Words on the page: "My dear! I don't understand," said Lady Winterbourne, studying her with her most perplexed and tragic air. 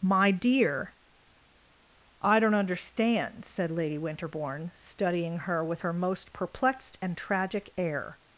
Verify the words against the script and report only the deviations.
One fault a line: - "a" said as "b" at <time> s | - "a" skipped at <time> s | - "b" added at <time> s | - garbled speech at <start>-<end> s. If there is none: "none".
none